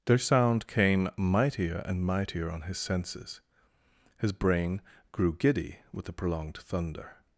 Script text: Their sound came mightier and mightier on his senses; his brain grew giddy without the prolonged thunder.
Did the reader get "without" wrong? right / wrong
wrong